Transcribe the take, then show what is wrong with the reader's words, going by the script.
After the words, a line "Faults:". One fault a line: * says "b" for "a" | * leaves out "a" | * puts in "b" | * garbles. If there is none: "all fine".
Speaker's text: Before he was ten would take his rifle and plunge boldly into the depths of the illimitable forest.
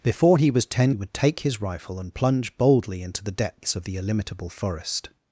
Before he was ten would take his rifle and plunge boldly into the depths of the illimitable forest.
Faults:
all fine